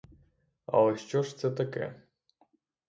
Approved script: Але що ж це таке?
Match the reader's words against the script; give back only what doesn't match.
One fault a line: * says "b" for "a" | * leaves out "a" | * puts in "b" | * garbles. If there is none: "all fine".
all fine